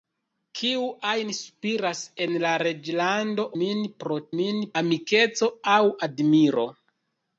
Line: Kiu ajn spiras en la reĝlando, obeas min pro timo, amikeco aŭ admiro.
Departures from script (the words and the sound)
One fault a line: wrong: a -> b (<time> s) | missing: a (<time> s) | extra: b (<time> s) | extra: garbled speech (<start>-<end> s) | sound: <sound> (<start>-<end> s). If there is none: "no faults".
missing: obeas (3.5 s)
wrong: timo -> min (4.4 s)